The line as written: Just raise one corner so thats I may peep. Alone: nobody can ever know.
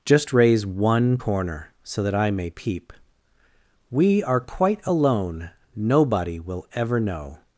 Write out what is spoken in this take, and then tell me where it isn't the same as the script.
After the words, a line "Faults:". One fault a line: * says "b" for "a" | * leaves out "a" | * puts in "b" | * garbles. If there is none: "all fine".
Just raise one corner so that I may peep. We are quite alone: nobody will ever know.
Faults:
* says "that" for "thats"
* puts in "We are quite"
* says "will" for "can"